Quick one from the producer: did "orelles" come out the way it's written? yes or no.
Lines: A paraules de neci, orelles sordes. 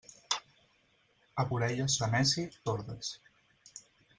no